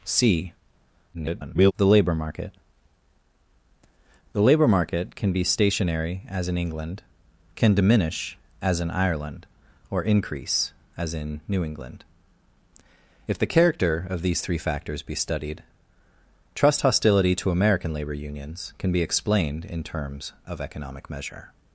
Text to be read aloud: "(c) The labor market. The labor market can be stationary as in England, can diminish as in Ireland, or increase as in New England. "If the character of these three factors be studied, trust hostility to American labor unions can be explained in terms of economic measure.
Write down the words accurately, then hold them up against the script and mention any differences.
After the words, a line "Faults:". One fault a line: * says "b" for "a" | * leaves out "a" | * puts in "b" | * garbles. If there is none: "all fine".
"(c) [garbled] The labor market. The labor market can be stationary as in England, can diminish as in Ireland, or increase as in New England. "If the character of these three factors be studied, trust hostility to American labor unions can be explained in terms of economic measure.
Faults:
* garbles